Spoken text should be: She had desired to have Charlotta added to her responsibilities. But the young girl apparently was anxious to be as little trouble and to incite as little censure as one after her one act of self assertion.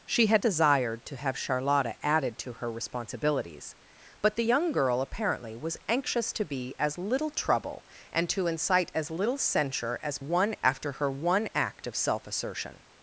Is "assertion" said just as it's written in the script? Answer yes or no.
yes